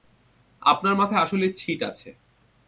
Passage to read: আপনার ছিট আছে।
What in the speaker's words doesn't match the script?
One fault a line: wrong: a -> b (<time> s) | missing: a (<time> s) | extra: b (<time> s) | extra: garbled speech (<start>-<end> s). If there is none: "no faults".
extra: মাথায় আসলেই (0.9 s)